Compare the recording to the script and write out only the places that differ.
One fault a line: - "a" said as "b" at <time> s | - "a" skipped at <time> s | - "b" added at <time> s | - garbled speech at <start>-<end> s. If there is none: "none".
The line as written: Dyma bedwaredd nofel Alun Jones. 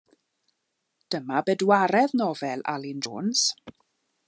none